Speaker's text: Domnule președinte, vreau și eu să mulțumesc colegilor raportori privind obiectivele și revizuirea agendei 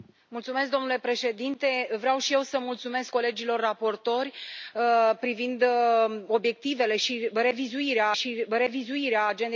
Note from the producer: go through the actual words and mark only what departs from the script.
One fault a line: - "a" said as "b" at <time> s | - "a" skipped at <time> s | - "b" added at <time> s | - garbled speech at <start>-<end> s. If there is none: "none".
- "și revizuirea" added at 8.1 s